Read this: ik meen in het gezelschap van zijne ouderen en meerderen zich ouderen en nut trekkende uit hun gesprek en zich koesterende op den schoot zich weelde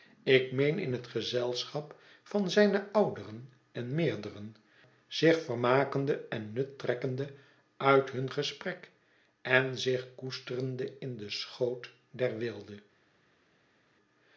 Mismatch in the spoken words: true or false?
true